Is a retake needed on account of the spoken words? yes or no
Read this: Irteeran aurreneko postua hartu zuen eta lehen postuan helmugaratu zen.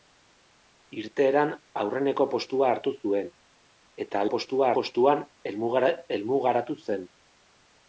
yes